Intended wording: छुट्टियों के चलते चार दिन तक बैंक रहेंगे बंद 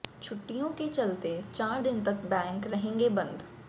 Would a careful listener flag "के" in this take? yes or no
no